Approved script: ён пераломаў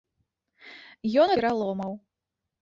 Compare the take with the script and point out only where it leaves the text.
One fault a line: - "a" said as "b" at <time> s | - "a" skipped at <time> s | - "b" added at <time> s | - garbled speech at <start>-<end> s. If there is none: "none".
none